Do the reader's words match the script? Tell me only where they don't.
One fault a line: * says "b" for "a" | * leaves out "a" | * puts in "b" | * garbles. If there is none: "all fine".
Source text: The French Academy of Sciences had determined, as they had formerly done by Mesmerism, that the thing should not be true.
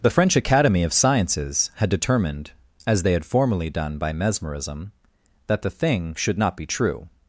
all fine